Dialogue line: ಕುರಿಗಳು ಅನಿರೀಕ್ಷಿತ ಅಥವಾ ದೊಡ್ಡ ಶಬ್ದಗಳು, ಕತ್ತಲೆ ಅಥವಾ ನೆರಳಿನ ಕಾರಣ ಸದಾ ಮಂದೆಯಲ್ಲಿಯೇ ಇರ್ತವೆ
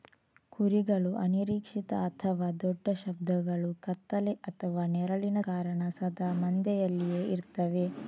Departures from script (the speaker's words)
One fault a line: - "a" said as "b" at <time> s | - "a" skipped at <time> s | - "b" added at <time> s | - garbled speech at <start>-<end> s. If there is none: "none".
none